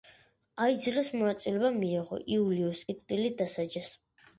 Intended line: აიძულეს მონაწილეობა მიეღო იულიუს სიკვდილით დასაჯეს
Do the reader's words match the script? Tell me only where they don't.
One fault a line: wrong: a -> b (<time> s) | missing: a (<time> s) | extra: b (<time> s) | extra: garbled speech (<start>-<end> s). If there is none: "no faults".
no faults